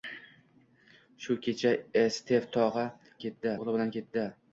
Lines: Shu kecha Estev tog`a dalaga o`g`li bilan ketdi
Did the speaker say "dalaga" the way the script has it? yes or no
no